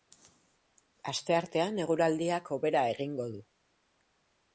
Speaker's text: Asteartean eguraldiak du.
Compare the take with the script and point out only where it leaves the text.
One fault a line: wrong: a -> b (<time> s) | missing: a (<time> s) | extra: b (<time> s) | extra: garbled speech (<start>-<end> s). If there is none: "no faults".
extra: hobera egingo (2.6 s)